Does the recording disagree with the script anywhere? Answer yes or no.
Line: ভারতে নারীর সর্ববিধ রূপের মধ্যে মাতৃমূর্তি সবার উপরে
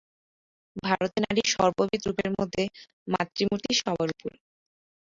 no